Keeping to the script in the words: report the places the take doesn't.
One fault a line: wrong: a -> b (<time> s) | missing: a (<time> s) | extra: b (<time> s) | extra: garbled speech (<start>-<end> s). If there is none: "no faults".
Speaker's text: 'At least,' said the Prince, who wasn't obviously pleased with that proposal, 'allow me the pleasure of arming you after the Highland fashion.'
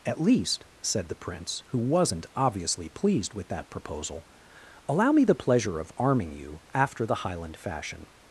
no faults